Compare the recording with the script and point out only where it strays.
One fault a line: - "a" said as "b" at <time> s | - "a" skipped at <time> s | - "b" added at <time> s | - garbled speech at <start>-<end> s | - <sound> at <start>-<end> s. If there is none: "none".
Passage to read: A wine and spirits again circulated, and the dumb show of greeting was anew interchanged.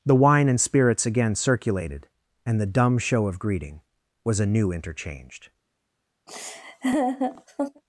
- "A" said as "The" at 0.0 s
- laugh at 6.3-7.8 s